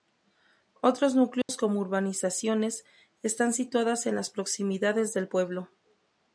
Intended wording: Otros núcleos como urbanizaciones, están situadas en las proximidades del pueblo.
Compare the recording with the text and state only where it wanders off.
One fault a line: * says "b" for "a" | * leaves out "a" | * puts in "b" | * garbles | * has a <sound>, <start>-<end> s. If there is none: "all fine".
* has a dropout, 1.4-1.5 s